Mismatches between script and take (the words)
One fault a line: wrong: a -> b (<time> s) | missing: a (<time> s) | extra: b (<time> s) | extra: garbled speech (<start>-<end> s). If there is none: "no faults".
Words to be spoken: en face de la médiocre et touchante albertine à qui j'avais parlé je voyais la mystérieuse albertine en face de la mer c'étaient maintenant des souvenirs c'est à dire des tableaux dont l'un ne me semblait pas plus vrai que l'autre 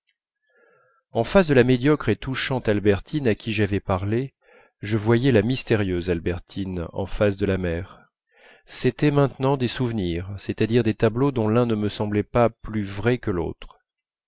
no faults